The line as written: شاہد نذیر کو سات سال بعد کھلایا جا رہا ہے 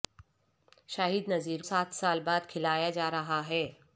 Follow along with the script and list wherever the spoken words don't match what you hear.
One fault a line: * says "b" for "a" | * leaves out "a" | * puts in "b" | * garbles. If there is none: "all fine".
* leaves out "کو"